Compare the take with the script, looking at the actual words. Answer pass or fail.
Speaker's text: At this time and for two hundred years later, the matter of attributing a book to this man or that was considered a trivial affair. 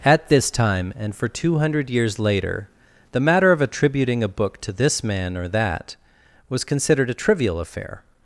pass